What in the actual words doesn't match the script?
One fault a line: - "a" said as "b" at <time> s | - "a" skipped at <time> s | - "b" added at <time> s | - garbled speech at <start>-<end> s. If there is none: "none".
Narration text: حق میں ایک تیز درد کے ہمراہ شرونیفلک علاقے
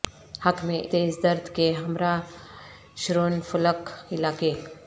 - "ایک" skipped at 0.8 s